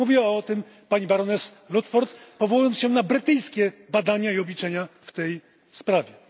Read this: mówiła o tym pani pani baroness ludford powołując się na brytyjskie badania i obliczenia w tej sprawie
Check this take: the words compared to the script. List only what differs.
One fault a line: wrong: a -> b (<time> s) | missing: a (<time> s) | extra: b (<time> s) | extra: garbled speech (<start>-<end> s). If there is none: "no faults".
missing: pani (1.1 s)